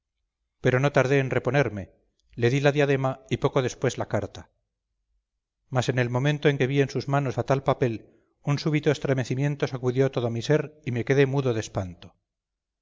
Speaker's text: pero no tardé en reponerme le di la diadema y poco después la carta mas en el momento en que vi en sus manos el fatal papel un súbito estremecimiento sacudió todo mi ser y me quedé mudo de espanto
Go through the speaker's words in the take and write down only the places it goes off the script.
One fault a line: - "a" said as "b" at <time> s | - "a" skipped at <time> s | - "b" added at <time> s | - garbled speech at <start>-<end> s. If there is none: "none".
- "el" skipped at 7.4 s